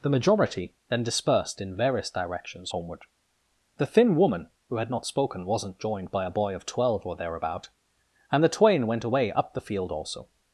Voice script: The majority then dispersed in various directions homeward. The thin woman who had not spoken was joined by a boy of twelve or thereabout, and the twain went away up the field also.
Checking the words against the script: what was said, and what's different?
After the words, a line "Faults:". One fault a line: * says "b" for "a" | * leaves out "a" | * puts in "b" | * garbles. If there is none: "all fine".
The majority then dispersed in various directions homeward. The thin woman who had not spoken wasn't joined by a boy of twelve or thereabout, and the twain went away up the field also.
Faults:
* says "wasn't" for "was"